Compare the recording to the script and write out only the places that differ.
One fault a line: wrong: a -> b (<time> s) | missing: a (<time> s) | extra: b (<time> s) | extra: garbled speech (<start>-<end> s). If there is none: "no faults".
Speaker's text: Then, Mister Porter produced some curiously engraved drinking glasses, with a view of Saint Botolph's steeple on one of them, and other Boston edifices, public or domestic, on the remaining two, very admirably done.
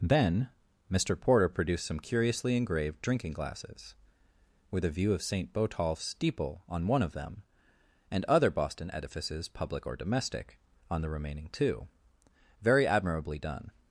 no faults